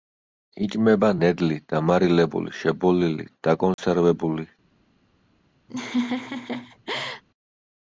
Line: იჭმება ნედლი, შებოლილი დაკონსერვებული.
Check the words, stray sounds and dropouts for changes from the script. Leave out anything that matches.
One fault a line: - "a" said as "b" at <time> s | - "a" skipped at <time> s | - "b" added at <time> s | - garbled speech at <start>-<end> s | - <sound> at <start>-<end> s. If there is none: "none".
- "დამარილებული" added at 1.8 s
- dropout at 3.7-3.8 s
- laugh at 5.7-7.2 s